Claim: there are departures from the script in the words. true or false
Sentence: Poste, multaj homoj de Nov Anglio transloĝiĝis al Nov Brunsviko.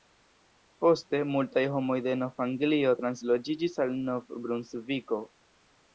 false